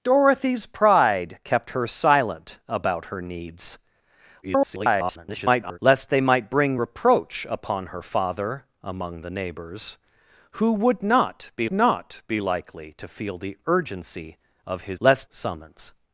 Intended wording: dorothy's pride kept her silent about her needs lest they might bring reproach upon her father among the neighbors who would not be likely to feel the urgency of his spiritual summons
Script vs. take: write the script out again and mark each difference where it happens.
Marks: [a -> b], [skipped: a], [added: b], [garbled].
dorothy's pride kept her silent about her needs [garbled] lest they might bring reproach upon her father among the neighbors who would not be [added: not be] likely to feel the urgency of his [spiritual -> lest] summons